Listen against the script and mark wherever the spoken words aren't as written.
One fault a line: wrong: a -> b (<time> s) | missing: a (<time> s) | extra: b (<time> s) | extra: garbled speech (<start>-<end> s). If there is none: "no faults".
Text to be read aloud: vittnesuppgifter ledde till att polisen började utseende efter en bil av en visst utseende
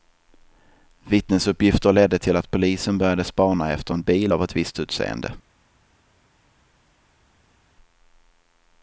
wrong: utseende -> spana (3.2 s)
wrong: en -> ett (4.4 s)